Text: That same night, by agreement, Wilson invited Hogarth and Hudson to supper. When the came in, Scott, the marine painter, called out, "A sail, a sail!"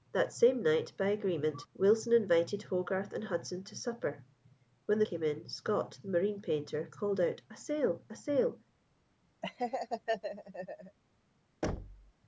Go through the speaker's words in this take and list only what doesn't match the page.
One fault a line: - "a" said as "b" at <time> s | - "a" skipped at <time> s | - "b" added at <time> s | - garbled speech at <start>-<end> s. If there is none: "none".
none